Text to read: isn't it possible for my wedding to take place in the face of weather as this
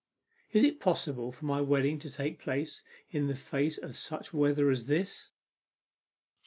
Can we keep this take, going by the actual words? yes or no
no